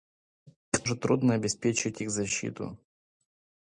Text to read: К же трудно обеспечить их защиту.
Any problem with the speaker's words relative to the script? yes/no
no